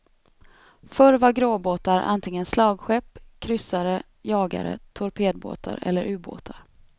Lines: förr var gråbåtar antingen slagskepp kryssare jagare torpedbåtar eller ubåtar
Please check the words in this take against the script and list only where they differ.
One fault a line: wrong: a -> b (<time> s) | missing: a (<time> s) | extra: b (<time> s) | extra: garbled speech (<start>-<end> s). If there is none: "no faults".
no faults